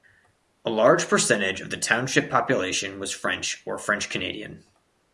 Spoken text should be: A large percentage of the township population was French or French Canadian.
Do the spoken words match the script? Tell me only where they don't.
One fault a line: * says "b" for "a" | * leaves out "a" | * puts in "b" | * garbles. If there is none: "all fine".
all fine